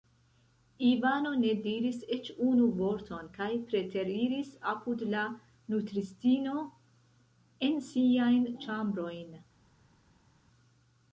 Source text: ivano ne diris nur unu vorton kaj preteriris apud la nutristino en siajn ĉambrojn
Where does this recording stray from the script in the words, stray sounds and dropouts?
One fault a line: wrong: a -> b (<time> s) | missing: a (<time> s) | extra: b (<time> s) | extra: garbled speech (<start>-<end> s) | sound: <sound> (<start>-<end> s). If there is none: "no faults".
wrong: nur -> eĉ (2.1 s)